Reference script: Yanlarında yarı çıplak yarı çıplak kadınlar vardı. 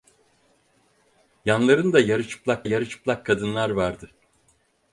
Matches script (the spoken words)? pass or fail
pass